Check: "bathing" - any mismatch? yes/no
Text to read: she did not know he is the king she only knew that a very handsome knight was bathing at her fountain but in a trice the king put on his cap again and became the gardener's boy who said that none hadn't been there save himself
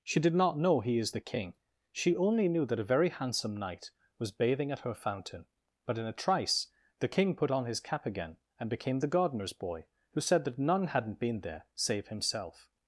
no